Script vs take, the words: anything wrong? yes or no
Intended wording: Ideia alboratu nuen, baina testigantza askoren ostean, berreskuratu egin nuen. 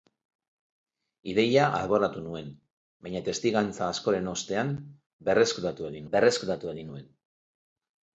yes